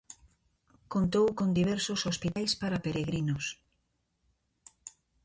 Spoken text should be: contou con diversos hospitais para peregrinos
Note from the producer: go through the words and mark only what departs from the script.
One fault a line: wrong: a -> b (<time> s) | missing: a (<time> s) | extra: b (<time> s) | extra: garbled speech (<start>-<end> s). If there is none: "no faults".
no faults